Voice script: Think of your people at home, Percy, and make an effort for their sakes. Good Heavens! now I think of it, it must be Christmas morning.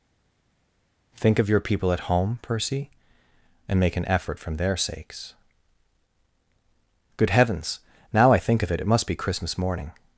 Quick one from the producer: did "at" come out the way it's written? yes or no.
yes